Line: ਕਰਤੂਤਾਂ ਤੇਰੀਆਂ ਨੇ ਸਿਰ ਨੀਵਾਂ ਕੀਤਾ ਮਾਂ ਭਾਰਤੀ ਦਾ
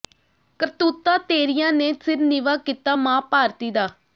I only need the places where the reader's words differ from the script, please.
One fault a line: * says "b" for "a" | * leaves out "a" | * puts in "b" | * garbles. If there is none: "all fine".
all fine